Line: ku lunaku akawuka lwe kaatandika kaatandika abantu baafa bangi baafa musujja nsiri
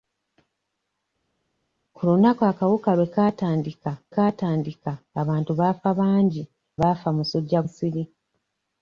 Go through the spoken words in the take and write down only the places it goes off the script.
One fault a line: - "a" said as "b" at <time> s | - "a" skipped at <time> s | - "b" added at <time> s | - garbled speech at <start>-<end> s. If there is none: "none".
none